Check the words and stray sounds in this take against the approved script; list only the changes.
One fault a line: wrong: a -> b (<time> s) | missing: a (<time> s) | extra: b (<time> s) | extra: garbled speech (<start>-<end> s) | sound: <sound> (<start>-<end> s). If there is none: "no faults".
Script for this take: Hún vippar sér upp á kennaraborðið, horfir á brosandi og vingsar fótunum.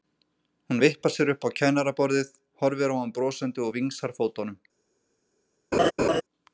extra: hann (3.0 s)
sound: laugh (5.7-6.2 s)